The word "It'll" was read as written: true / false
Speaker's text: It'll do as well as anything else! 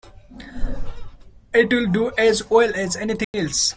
true